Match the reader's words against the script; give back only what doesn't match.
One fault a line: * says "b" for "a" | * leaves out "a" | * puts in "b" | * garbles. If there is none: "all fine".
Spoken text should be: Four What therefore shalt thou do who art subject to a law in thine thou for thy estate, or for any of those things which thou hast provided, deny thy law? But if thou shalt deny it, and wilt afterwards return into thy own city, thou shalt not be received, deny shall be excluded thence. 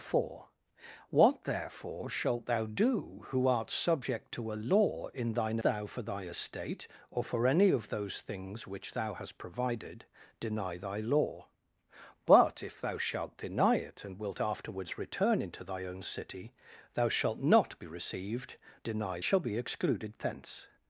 all fine